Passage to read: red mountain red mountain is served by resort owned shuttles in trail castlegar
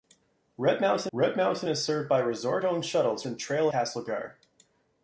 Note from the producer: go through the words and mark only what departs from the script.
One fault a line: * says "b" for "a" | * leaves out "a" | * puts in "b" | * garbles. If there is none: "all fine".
all fine